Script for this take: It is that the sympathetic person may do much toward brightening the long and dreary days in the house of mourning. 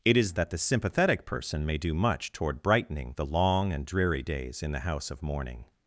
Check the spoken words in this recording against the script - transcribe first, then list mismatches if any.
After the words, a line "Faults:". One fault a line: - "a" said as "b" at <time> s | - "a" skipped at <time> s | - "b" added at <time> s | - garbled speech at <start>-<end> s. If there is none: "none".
It is that the sympathetic person may do much toward brightening the long and dreary days in the house of mourning.
Faults:
none